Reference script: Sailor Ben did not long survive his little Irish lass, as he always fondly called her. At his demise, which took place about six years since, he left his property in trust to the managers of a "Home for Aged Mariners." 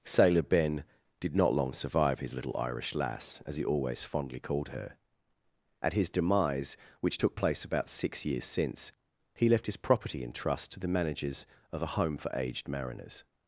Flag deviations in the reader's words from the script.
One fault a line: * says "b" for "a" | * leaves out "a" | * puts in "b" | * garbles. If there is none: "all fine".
all fine